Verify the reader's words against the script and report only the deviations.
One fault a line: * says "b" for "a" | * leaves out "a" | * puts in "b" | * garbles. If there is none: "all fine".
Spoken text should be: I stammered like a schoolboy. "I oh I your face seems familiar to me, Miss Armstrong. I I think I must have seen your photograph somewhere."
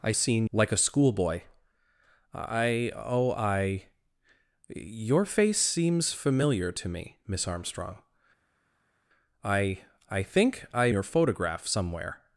* says "seen" for "stammered"
* leaves out "must have seen"